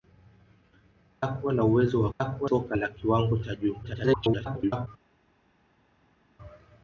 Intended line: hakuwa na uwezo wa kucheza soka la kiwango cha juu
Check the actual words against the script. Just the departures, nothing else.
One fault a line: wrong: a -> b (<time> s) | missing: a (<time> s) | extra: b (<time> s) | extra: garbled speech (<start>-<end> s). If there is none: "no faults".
wrong: kucheza -> hakuwa (2.2 s)
extra: garbled speech (3.8-4.9 s)